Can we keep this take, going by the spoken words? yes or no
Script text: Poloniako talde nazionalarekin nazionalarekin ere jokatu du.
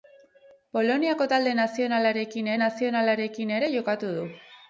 yes